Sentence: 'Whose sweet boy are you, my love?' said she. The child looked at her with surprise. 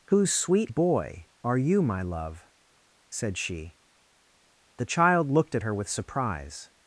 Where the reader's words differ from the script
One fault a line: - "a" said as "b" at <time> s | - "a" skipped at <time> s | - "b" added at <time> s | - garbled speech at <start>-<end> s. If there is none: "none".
none